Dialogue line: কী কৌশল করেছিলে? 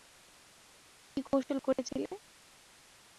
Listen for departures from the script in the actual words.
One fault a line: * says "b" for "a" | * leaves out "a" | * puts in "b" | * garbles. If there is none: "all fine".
all fine